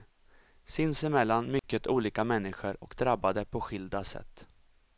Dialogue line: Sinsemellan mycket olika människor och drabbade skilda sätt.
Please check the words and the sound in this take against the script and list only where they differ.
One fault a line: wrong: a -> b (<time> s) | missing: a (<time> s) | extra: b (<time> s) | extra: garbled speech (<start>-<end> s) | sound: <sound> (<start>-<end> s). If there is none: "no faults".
sound: dropout (1.6-1.6 s)
extra: på (3.5 s)